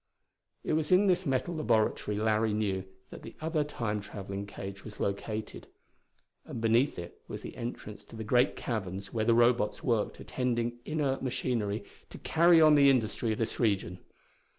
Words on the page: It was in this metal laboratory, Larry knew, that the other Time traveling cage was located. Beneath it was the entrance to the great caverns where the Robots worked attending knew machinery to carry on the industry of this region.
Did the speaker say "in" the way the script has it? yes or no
yes